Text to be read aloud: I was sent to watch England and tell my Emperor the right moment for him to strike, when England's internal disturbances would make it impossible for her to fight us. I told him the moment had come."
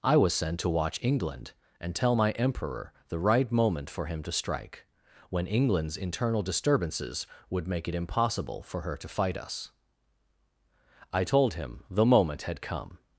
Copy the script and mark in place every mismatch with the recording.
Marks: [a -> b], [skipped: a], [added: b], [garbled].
I was sent to watch England and tell my Emperor the right moment for him to strike, when England's internal disturbances would make it impossible for her to fight us. I told him the moment had come."